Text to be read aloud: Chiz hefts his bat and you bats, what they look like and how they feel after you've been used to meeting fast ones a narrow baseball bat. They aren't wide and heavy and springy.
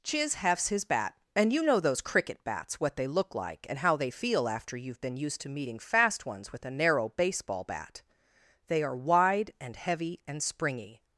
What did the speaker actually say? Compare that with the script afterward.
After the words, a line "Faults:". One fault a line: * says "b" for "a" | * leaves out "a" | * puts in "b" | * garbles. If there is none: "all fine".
Chiz hefts his bat and you know those cricket bats, what they look like and how they feel after you've been used to meeting fast ones with a narrow baseball bat. They are wide and heavy and springy.
Faults:
* puts in "know those cricket"
* puts in "with"
* says "are" for "aren't"